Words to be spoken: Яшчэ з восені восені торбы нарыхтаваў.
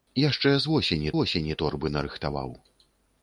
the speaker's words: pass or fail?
pass